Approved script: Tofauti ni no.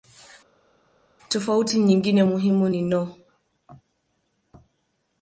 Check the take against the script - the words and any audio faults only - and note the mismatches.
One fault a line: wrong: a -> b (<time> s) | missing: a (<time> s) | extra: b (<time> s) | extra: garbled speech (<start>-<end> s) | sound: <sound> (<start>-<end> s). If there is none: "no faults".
extra: nyingine muhimu (1.8 s)